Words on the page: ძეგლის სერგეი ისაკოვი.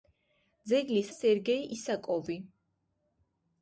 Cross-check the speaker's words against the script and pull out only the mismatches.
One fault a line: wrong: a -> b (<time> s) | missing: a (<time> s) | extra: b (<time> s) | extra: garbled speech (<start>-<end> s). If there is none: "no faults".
no faults